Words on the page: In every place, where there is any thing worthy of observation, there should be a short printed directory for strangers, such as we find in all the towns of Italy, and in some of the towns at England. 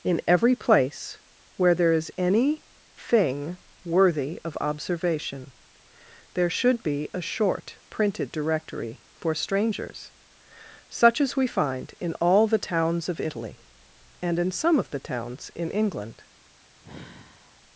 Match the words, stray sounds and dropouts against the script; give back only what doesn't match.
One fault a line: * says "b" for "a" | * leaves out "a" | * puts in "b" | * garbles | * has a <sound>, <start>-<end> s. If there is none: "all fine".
* says "in" for "at"
* has a sigh, 16.8-17.6 s